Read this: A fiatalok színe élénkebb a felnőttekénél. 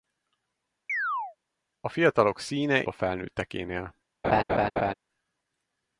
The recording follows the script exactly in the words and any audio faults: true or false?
false